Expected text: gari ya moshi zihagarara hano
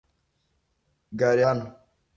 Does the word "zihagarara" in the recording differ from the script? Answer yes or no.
yes